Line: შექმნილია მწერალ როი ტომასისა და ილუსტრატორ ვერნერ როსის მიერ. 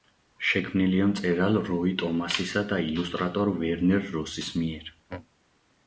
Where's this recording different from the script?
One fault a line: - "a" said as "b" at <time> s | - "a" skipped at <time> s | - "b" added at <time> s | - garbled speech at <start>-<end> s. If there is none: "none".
none